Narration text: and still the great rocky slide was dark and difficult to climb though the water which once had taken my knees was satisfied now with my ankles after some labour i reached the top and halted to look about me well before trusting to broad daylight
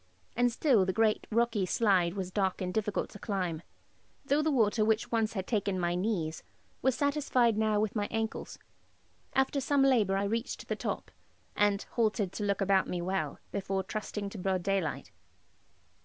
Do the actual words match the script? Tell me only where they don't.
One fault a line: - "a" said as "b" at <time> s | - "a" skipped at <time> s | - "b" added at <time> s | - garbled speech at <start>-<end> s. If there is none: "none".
none